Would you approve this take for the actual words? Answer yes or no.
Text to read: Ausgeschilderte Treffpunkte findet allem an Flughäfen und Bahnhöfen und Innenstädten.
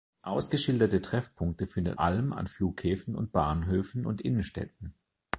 yes